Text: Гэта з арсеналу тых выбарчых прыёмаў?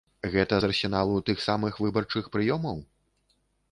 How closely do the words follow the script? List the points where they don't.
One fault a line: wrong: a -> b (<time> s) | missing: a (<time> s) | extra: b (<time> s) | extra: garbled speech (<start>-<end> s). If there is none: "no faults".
extra: самых (1.5 s)